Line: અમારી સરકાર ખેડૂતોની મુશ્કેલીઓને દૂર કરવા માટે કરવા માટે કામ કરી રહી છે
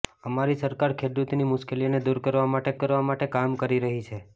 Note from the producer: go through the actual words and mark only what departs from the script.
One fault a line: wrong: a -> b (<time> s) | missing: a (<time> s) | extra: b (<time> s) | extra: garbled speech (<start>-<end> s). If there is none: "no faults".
no faults